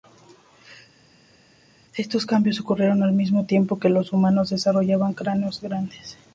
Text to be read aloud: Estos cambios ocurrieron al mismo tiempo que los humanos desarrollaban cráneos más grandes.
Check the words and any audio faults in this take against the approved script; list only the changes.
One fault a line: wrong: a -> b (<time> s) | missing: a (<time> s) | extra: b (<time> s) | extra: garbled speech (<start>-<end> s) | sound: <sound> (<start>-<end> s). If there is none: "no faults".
missing: más (5.6 s)